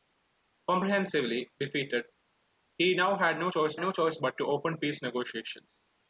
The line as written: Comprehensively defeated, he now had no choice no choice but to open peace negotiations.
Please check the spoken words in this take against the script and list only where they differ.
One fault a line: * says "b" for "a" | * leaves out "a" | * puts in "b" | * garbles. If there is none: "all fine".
all fine